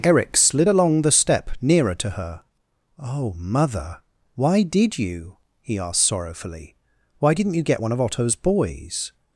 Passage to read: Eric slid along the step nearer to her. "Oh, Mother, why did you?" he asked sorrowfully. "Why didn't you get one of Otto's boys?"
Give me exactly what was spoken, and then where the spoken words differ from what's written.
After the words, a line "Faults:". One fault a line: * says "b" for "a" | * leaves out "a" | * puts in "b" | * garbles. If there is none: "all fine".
Eric slid along the step nearer to her. "Oh, Mother, why did you?" he asked sorrowfully. "Why didn't you get one of Otto's boys?"
Faults:
all fine